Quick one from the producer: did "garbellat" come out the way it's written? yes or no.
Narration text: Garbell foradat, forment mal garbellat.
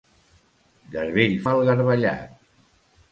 yes